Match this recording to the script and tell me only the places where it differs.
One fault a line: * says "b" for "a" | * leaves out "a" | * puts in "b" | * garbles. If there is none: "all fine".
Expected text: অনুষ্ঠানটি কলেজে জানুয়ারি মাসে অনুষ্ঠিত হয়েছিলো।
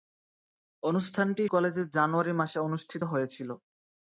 all fine